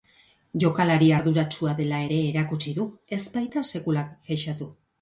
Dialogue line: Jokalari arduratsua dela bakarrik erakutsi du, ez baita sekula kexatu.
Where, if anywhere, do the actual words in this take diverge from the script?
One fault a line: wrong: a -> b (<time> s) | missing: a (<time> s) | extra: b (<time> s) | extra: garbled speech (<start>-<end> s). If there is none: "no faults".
wrong: bakarrik -> ere (2.1 s)